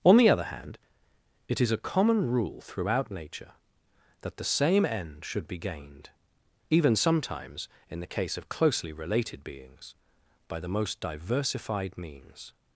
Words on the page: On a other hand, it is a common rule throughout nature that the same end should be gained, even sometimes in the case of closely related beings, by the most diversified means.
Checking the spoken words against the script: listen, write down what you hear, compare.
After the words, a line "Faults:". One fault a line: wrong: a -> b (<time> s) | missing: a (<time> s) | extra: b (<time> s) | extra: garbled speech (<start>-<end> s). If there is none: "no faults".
On the other hand, it is a common rule throughout nature that the same end should be gained, even sometimes in the case of closely related beings, by the most diversified means.
Faults:
wrong: a -> the (0.2 s)